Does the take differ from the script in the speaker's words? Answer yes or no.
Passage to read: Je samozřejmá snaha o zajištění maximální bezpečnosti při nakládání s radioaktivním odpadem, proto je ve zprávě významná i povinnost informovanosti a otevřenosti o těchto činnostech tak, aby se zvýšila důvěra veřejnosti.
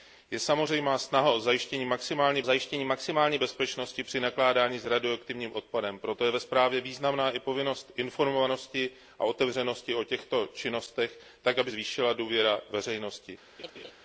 yes